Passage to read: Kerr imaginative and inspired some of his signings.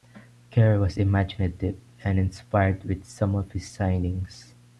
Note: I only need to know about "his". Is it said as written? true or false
true